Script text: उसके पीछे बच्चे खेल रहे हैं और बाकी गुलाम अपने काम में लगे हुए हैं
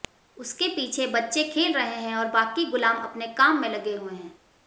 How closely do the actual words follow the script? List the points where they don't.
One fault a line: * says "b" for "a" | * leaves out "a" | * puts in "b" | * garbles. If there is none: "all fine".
all fine